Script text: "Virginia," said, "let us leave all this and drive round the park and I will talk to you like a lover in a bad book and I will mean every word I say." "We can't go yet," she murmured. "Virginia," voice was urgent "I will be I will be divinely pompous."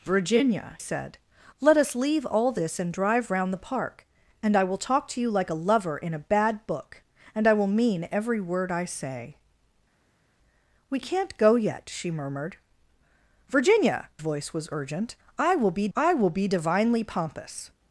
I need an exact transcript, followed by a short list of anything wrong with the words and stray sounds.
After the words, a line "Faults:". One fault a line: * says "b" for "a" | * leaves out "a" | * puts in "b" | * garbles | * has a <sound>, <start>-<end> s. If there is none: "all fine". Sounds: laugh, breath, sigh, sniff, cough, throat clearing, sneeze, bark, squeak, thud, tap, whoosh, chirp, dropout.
"Virginia," said, "let us leave all this and drive round the park and I will talk to you like a lover in a bad book and I will mean every word I say." "We can't go yet," she murmured. "Virginia," voice was urgent "I will be I will be divinely pompous."
Faults:
all fine